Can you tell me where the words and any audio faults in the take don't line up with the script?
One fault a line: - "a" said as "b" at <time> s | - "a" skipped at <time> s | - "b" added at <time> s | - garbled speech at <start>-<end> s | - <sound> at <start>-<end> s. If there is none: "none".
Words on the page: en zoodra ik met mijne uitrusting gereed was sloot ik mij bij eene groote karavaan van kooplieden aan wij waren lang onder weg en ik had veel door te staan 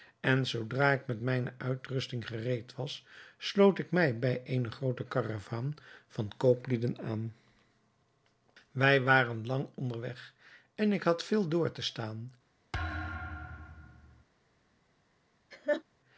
- thud at 12.7-14.2 s
- laugh at 15.5-15.8 s